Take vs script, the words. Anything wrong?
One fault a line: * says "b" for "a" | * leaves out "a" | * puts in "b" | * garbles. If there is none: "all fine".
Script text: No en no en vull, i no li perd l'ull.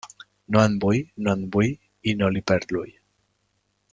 * puts in "vull"